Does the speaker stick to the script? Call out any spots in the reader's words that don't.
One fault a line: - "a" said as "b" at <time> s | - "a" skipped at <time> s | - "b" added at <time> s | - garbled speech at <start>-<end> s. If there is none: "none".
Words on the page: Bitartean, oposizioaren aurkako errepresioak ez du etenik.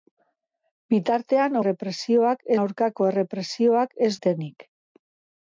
- "oposizioaren" said as "errepresioak" at 1.6 s
- "du" skipped at 4.1 s